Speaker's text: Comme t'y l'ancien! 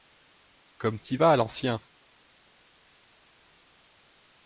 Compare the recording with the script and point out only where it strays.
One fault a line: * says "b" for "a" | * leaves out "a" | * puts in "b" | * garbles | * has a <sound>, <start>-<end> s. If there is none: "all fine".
* puts in "vas"